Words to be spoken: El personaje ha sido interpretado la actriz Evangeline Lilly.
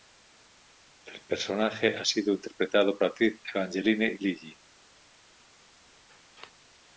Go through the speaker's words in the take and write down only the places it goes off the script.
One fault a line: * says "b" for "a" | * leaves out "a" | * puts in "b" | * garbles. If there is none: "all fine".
all fine